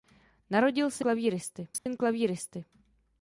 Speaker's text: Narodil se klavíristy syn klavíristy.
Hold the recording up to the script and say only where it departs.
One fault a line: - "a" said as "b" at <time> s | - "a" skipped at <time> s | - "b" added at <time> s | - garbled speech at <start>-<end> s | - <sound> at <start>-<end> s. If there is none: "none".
- dropout at 1.8-1.9 s